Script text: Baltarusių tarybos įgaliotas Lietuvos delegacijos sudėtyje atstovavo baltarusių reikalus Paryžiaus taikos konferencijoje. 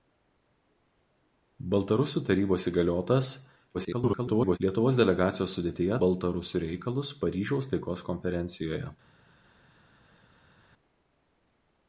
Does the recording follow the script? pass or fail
fail